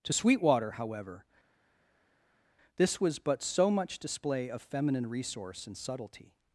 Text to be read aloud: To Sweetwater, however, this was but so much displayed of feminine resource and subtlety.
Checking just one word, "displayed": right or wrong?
wrong